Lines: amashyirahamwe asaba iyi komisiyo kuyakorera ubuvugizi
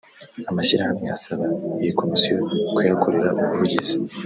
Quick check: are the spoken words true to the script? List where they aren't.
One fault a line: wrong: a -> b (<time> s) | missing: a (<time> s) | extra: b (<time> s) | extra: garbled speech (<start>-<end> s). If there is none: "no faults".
no faults